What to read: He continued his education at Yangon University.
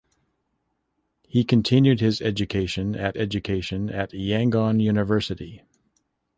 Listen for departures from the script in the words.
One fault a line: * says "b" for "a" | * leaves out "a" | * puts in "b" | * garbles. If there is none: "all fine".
* puts in "education at"